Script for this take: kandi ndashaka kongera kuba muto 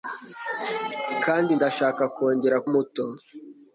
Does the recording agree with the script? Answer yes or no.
no